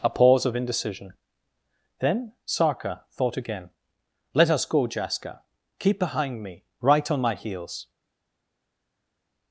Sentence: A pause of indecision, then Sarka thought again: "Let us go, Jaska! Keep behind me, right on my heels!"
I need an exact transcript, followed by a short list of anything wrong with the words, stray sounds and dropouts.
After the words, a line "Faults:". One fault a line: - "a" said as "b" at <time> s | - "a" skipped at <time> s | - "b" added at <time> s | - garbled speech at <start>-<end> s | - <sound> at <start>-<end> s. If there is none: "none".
A pause of indecision, then Sarka thought again: "Let us go, Jaska! Keep behind me, right on my heels!"
Faults:
none